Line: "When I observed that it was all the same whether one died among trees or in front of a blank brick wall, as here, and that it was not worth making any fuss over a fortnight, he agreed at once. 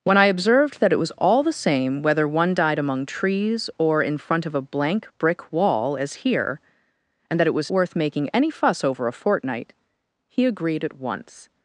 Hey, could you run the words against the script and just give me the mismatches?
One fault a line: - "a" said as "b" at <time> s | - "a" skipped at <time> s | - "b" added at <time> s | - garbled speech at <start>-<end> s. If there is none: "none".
- "not" skipped at 7.7 s